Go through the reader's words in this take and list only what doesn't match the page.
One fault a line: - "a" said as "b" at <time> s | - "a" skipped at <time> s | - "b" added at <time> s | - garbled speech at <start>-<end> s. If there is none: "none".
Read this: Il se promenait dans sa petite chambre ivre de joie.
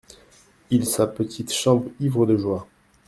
- "se promenait dans" skipped at 0.9 s